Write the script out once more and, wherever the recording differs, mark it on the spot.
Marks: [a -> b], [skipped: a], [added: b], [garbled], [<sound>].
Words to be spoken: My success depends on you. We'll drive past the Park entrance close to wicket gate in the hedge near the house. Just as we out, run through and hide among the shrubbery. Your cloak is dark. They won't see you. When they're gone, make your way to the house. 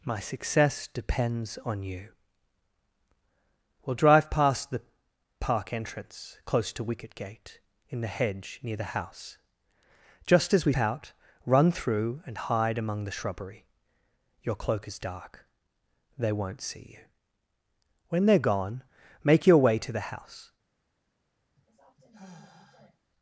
My success depends on you. We'll drive past the Park entrance close to wicket gate in the hedge near the house. Just as we out, run through and hide among the shrubbery. Your cloak is dark. They won't see you. When they're gone, make your way to the house. [sigh]